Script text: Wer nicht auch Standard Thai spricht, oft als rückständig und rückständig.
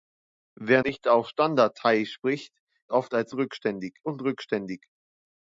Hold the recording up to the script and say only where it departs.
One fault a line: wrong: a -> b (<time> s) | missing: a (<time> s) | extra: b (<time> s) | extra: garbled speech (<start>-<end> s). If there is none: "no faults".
no faults